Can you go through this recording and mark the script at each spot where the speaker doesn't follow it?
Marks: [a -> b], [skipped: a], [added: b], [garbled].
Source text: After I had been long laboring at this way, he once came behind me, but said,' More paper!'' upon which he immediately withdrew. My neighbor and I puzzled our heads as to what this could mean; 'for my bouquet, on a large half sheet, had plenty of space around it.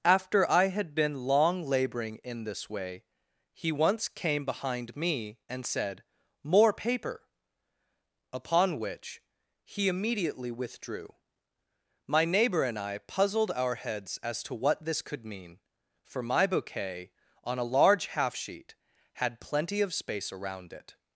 After I had been long laboring [at -> in] this way, he once came behind me, [but -> and] said,' More paper!'' upon which he immediately withdrew. My neighbor and I puzzled our heads as to what this could mean; 'for my bouquet, on a large half sheet, had plenty of space around it.